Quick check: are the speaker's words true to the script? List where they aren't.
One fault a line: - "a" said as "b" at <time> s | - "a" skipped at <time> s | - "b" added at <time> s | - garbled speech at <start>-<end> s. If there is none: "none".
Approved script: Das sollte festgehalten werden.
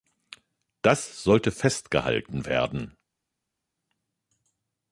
none